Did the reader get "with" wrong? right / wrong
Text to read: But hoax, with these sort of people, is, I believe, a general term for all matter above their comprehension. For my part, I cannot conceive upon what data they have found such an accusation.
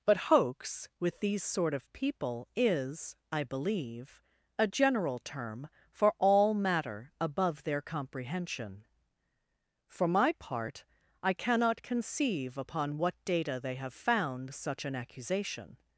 right